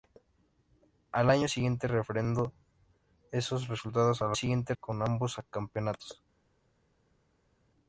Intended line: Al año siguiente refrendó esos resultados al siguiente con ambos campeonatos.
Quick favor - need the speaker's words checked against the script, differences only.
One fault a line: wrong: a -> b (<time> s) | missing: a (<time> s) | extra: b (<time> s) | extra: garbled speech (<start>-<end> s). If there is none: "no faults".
no faults